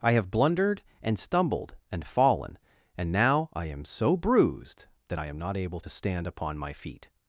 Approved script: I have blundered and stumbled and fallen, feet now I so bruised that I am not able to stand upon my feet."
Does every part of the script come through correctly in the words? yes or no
no